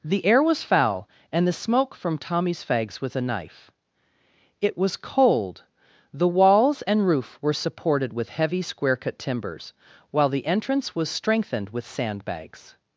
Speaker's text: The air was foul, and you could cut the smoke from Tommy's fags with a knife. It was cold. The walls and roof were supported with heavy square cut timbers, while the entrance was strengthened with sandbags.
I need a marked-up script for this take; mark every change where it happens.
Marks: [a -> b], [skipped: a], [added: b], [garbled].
The air was foul, and [skipped: you could cut] the smoke from Tommy's fags with a knife. It was cold. The walls and roof were supported with heavy square cut timbers, while the entrance was strengthened with sandbags.